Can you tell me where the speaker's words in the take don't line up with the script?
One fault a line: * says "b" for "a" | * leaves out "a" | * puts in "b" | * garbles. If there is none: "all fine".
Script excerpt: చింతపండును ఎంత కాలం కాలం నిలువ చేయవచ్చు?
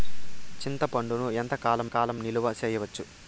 all fine